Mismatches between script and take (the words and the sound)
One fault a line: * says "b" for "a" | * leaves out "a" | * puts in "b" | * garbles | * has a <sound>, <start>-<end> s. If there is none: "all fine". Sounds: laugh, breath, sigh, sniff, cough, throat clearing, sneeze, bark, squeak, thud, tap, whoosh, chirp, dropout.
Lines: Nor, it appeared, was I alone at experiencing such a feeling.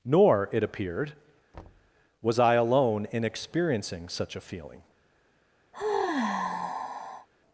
* has a thud, 1.5-1.9 s
* says "in" for "at"
* has a sigh, 5.7-7.3 s